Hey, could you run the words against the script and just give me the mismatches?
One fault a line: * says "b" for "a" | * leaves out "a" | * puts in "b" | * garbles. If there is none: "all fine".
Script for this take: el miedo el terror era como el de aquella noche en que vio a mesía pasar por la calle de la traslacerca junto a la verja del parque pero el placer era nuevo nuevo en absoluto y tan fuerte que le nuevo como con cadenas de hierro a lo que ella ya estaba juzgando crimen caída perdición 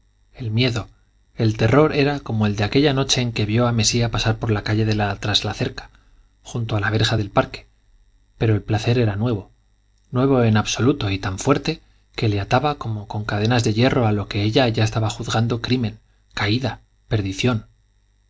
* says "ataba" for "nuevo"